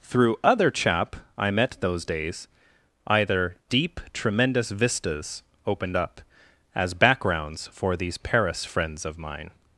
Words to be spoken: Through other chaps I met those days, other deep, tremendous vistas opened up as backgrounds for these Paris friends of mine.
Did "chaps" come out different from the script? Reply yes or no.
yes